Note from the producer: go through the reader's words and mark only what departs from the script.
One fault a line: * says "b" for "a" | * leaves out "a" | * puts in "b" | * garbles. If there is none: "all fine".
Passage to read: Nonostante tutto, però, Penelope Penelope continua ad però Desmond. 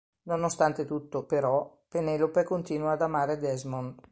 * leaves out "Penelope"
* says "amare" for "però"